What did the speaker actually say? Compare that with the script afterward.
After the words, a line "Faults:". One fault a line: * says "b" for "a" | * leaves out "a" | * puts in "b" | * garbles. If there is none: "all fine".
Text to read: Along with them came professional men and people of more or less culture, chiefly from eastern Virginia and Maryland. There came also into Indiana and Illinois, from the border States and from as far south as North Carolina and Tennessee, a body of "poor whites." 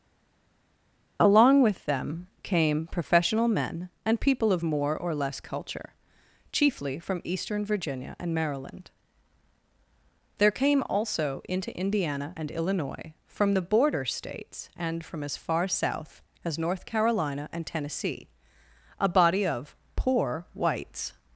Along with them came professional men and people of more or less culture, chiefly from eastern Virginia and Maryland. There came also into Indiana and Illinois, from the border States and from as far south as North Carolina and Tennessee, a body of "poor whites."
Faults:
all fine